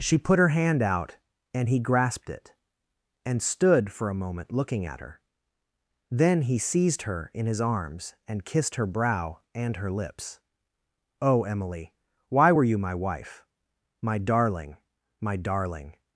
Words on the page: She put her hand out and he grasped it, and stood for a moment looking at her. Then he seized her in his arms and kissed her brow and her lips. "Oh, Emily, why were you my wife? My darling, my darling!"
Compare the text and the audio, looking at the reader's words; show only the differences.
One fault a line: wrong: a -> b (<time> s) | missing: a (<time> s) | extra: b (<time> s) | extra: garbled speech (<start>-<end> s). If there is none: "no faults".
no faults